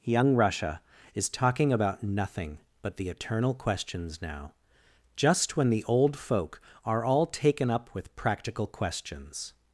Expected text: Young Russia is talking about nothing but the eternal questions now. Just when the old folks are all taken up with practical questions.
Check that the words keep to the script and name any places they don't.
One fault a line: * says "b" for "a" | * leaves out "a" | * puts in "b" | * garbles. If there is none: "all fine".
* says "folk" for "folks"